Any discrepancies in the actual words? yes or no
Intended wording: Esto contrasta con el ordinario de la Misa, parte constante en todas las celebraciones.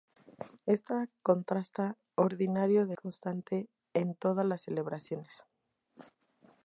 yes